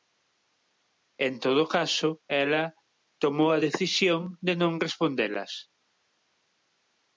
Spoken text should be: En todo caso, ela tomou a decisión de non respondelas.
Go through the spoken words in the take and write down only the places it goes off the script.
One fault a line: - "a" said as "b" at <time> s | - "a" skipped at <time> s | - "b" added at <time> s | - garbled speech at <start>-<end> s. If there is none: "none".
none